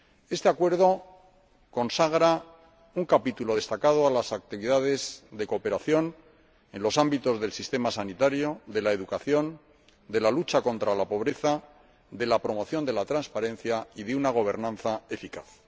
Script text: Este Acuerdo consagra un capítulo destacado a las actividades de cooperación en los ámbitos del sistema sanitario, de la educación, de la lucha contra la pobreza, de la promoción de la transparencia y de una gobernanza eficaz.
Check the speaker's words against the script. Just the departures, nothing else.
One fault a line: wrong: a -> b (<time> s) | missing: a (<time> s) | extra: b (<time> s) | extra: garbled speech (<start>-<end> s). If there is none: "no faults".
no faults